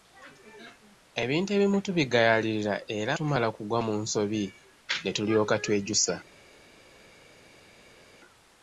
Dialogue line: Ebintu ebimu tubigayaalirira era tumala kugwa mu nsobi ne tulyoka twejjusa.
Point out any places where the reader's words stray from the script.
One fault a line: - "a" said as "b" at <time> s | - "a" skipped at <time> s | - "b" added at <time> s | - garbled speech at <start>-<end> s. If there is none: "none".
none